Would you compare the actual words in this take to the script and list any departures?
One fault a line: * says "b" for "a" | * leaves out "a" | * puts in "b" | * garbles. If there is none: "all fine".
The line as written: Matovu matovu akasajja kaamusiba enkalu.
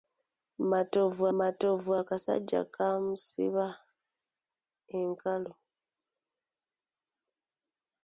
all fine